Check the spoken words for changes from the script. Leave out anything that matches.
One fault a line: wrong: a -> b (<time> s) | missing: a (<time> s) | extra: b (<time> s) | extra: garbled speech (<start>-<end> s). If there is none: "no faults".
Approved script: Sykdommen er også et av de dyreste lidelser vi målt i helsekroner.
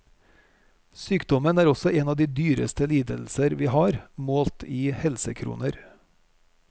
wrong: et -> en (1.9 s)
extra: har (3.7 s)